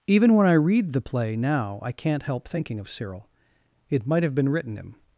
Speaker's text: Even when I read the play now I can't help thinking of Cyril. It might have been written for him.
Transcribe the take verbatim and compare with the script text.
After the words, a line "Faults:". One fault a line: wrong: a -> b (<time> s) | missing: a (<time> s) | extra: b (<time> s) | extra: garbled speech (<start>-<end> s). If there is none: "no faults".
Even when I read the play now I can't help thinking of Cyril. It might have been written him.
Faults:
missing: for (4.8 s)